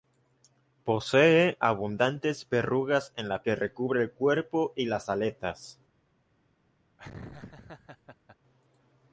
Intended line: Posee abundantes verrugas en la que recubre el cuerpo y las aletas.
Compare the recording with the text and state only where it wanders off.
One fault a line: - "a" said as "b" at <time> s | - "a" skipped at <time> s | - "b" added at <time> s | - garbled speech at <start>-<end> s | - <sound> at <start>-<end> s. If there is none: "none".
- laugh at 7.0-8.4 s